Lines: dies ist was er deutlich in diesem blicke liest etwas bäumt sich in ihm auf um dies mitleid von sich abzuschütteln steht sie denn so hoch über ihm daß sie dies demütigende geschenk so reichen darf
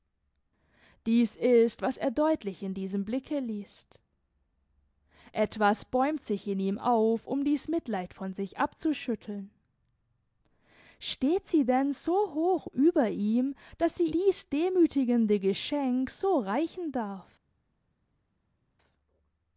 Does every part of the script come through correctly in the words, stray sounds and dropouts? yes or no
yes